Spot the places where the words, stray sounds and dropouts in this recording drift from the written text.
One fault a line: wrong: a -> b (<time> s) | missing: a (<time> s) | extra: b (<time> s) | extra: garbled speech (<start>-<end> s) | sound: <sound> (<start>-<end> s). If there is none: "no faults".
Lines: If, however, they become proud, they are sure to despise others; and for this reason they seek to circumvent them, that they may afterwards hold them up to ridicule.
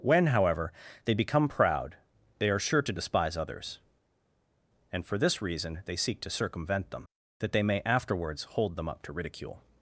wrong: If -> When (0.0 s)